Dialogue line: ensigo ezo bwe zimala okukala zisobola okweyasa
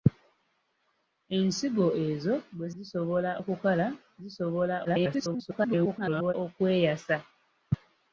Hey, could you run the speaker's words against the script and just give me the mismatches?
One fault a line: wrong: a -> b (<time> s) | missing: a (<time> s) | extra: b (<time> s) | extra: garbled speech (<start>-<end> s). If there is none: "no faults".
wrong: zimala -> zisobola (2.7 s)
extra: garbled speech (4.8-6.3 s)